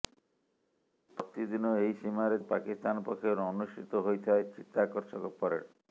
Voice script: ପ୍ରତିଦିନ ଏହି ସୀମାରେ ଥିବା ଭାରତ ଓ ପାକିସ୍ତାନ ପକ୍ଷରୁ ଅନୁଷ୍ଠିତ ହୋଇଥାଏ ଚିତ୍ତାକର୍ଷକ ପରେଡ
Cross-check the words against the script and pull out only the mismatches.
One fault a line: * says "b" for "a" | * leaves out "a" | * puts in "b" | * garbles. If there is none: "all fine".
* leaves out "ଥିବା ଭାରତ"